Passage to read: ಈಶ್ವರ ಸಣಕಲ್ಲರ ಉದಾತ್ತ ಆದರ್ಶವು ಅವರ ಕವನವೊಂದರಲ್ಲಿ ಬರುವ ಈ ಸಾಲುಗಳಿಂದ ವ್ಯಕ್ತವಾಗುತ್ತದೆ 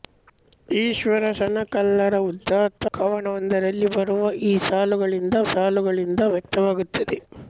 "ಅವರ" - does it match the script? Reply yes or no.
no